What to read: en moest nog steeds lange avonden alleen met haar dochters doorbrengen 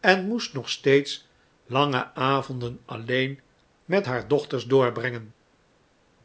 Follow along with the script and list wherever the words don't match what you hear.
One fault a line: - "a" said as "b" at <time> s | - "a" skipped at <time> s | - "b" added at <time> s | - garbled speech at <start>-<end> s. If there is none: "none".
none